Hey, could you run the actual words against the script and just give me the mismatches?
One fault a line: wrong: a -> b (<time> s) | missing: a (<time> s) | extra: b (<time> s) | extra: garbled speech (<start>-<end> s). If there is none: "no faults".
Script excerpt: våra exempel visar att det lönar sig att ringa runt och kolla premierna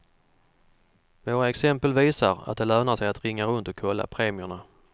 no faults